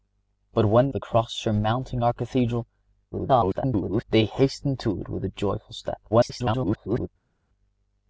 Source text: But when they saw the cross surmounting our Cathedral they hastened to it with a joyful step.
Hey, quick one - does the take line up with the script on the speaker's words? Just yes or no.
no